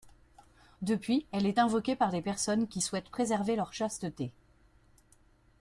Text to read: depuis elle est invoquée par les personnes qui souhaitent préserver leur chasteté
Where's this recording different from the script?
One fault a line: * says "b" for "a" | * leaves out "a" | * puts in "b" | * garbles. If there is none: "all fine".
all fine